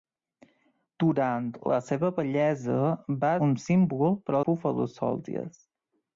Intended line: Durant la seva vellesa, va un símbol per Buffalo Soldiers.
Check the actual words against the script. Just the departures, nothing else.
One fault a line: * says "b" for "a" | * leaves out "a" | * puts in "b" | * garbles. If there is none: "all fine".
all fine